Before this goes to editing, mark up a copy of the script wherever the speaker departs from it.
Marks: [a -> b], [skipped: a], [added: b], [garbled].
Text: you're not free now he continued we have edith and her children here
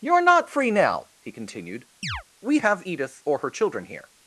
you're not free now he continued we have edith [and -> or] her children here